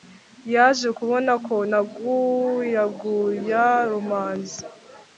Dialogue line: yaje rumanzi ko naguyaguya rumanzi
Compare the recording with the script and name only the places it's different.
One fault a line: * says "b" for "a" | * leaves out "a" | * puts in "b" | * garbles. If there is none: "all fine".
* says "kubona" for "rumanzi"